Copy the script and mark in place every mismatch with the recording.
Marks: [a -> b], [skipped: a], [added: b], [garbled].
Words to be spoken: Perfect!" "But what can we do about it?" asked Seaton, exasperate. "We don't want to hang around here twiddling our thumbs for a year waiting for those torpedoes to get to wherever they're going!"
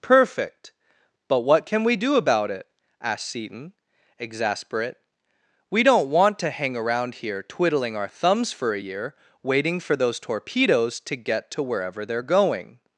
Perfect!" "But what can we do about it?" asked Seaton, exasperate. "We don't want to hang around here twiddling our thumbs for a year waiting for those torpedoes to get to wherever they're going!"